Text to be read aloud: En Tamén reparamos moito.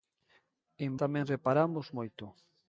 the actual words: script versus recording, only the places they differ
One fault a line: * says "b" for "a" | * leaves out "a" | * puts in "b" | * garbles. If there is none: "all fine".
all fine